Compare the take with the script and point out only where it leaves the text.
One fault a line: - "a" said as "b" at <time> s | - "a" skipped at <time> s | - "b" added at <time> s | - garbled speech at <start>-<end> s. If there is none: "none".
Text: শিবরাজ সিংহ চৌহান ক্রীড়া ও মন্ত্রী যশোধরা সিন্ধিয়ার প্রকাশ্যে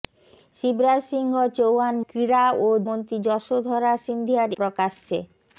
none